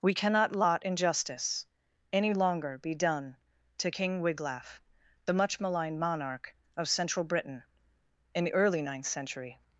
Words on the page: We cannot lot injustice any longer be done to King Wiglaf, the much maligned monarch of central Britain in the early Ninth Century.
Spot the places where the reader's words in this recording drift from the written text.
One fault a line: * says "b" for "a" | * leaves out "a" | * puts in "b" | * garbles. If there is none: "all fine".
all fine